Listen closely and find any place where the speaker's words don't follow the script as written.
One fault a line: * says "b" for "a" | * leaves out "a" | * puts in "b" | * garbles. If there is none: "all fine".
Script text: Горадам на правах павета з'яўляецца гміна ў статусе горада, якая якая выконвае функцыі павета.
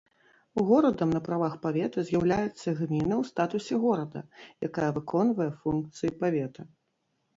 * leaves out "якая"